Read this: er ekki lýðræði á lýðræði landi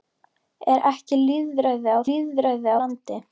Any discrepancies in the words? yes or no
no